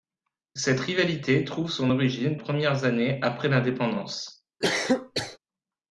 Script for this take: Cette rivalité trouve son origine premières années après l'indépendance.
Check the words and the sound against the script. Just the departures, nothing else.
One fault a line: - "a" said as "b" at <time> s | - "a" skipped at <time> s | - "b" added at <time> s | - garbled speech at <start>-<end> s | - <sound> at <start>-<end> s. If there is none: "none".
- cough at 4.6-5.4 s